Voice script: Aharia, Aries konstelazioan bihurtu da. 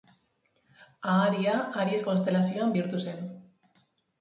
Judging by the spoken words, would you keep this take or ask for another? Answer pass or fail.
fail